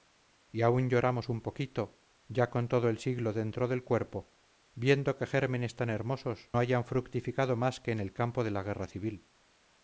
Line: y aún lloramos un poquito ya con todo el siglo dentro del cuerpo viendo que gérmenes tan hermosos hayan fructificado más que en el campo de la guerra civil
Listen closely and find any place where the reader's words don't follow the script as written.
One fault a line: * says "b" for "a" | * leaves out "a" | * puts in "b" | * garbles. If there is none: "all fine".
all fine